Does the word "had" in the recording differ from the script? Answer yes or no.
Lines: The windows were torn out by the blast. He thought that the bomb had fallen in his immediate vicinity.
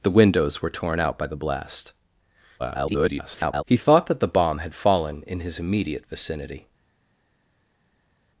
no